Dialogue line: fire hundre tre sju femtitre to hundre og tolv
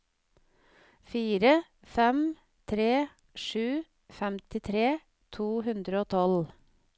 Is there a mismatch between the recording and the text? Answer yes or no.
yes